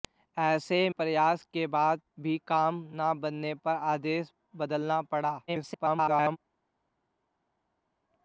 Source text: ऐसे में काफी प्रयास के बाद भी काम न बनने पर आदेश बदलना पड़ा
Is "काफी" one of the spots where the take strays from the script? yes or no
yes